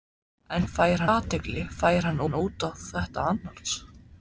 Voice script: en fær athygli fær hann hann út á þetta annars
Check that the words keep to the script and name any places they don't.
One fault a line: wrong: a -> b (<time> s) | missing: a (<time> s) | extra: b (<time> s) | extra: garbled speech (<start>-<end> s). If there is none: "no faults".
no faults